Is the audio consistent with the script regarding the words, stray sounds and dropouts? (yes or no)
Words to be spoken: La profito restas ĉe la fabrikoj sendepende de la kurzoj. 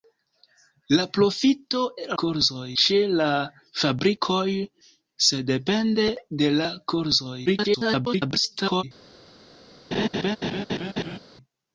no